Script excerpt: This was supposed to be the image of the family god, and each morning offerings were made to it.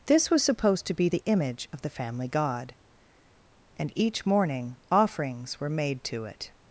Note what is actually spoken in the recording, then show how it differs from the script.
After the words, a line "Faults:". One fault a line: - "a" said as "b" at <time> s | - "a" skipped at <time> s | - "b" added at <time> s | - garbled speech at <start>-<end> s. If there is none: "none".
This was supposed to be the image of the family god, and each morning offerings were made to it.
Faults:
none